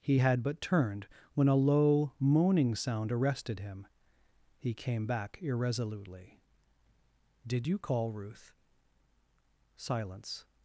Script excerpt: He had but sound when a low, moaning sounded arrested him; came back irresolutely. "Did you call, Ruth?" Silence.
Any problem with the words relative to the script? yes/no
yes